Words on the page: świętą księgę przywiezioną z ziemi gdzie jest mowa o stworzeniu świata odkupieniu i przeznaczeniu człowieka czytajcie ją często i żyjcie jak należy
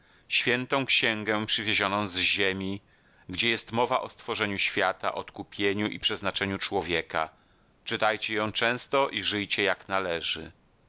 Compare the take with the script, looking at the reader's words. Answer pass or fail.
pass